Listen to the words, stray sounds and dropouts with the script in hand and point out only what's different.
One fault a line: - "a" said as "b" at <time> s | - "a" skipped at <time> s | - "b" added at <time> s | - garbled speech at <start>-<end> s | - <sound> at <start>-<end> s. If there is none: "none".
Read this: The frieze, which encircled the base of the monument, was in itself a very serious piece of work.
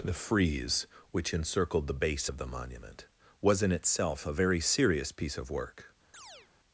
- chirp at 6.1-6.5 s